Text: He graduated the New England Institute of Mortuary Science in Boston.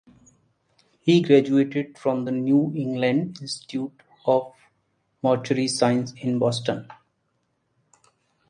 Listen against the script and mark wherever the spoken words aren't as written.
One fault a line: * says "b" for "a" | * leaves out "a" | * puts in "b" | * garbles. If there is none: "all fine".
* puts in "from"